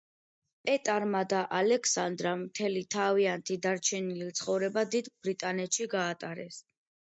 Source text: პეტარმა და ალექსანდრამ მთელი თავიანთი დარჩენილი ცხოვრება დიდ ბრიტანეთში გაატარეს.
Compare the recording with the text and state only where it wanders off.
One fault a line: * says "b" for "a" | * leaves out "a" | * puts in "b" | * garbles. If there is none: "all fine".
all fine